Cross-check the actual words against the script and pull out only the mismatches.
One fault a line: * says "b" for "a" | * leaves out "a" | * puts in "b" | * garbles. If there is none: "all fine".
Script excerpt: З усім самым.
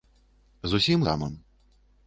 all fine